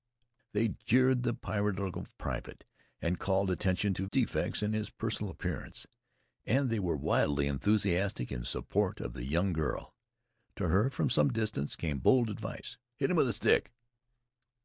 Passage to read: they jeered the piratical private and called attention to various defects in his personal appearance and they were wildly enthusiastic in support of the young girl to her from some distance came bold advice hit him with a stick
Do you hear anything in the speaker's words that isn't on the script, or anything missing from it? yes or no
yes